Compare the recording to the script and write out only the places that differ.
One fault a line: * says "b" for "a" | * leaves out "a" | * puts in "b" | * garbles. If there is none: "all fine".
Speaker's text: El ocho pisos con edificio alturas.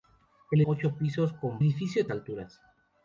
all fine